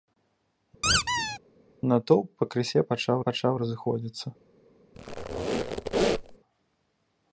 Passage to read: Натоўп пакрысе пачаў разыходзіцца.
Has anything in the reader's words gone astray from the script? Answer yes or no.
yes